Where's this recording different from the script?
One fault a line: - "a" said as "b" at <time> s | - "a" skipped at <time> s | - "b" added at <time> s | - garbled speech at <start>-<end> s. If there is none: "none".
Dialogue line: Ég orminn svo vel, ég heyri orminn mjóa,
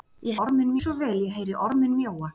none